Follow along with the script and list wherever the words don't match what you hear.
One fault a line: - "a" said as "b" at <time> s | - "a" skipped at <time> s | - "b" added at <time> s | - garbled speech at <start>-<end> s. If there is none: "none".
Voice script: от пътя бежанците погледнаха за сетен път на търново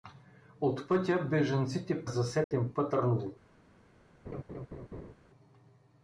- "погледнаха" skipped at 2.0 s
- "на" skipped at 2.9 s